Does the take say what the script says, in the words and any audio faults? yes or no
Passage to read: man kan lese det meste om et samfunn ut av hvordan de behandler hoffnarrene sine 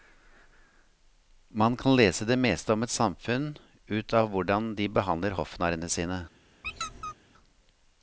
no